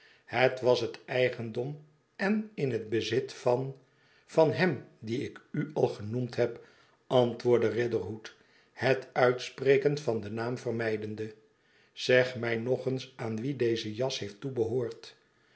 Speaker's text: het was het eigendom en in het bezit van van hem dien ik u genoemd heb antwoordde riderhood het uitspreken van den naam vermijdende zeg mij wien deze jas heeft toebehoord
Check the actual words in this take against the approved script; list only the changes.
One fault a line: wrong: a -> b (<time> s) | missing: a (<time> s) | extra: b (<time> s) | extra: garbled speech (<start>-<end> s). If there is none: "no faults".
extra: al (5.7 s)
extra: nog eens aan (12.5 s)